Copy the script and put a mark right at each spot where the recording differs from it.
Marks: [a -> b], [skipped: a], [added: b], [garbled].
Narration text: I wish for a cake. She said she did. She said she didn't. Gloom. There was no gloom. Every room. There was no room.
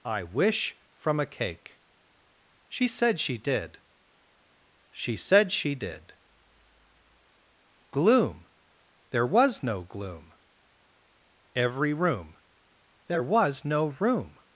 I wish [for -> from] a cake. She said she did. She said she [didn't. -> did] Gloom. There was no gloom. Every room. There was no room.